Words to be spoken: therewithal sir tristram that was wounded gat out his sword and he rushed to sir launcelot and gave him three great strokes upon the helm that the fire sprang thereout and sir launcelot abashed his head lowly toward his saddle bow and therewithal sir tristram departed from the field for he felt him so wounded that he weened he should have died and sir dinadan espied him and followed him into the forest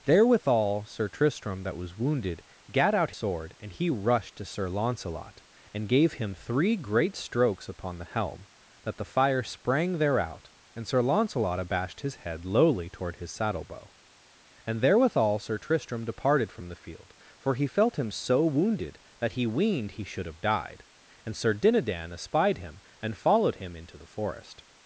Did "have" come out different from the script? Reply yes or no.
no